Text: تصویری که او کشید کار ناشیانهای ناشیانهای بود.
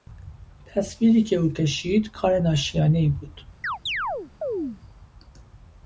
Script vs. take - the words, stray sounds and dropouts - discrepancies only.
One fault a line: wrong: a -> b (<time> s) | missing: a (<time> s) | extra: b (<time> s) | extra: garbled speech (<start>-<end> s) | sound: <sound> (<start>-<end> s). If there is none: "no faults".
missing: ناشیانهای (3.1 s)
sound: chirp (3.6-4.8 s)